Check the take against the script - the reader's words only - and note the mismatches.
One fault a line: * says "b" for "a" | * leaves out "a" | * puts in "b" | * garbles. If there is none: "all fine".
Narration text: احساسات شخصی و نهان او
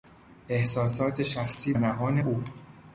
* leaves out "و"